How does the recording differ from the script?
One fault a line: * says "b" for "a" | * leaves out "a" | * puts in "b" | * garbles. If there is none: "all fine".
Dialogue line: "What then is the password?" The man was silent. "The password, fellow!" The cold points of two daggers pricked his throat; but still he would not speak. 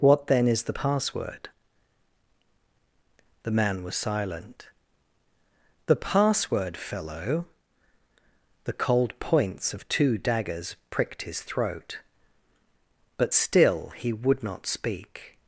all fine